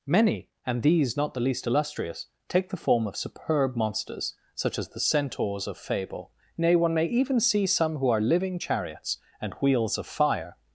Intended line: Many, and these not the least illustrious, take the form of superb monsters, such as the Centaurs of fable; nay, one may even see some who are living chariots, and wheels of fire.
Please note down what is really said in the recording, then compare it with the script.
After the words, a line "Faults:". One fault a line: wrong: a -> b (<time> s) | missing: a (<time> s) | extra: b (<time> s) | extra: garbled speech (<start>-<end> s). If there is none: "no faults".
Many, and these not the least illustrious, take the form of superb monsters, such as the Centaurs of fable; nay, one may even see some who are living chariots, and wheels of fire.
Faults:
no faults